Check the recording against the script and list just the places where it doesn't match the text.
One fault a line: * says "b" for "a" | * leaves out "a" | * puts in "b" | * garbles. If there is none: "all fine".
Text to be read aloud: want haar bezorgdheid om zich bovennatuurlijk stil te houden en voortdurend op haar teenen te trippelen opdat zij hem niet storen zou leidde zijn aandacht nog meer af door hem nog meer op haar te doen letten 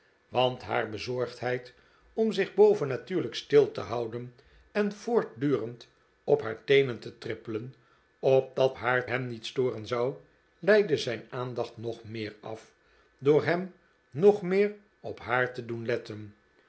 * says "haar" for "zij"